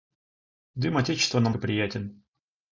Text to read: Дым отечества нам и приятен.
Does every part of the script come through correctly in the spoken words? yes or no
yes